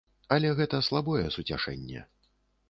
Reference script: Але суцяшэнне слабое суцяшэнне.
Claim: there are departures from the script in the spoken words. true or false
true